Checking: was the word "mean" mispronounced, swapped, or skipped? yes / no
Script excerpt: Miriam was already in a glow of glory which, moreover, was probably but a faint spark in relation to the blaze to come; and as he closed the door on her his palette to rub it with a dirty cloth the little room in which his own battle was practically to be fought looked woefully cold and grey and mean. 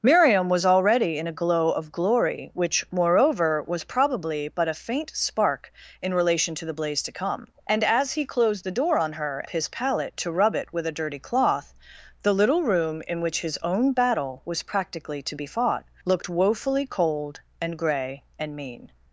no